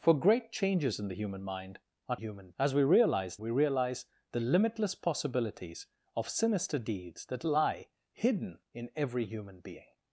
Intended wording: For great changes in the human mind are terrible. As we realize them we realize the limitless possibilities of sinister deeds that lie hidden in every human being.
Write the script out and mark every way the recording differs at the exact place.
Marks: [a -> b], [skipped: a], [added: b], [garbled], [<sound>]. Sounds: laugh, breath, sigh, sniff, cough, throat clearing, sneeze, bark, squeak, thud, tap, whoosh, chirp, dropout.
For great changes in the human mind are [terrible. -> human] As we realize [skipped: them] we realize the limitless possibilities of sinister deeds that lie hidden in every human being.